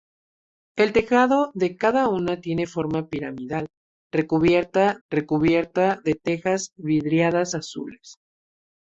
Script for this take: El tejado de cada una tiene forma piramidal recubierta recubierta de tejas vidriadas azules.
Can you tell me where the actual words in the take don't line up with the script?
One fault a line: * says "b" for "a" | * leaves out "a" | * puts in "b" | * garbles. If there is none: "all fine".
all fine